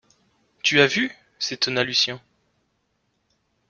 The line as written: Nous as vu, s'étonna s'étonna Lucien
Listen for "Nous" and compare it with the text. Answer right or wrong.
wrong